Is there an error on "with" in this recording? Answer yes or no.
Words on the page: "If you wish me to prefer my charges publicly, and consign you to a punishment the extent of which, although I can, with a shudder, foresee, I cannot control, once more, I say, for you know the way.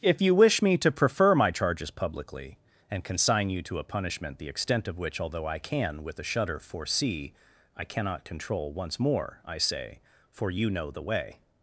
no